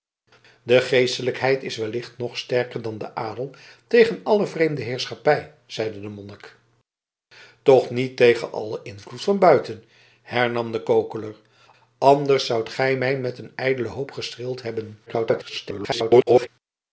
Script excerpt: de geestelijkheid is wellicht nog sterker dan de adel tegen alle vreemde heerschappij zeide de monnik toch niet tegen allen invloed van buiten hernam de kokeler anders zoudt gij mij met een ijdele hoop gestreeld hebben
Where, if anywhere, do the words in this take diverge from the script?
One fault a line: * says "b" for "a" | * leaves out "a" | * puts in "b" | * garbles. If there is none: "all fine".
* garbles